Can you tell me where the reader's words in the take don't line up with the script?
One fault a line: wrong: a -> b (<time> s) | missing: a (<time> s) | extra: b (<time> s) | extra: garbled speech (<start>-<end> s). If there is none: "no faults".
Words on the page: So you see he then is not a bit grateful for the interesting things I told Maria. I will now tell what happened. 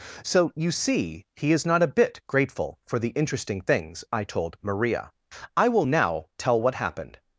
missing: then (1.5 s)